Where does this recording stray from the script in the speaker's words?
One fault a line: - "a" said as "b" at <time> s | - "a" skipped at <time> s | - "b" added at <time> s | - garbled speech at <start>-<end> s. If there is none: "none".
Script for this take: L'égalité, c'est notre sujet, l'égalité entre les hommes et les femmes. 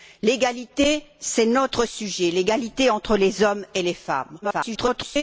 - garbled speech at 4.4-5.2 s